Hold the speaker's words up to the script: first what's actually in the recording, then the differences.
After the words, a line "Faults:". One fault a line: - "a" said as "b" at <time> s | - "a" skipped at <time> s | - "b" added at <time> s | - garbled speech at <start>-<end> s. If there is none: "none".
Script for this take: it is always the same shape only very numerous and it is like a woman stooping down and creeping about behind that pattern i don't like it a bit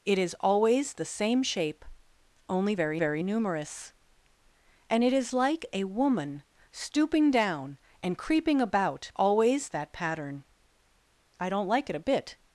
it is always the same shape only very very numerous and it is like a woman stooping down and creeping about always that pattern i don't like it a bit
Faults:
- "very" added at 3.0 s
- "behind" said as "always" at 9.1 s